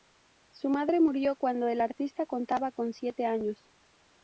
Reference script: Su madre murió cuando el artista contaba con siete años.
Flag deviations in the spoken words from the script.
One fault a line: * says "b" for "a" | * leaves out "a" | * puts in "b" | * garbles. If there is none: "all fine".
all fine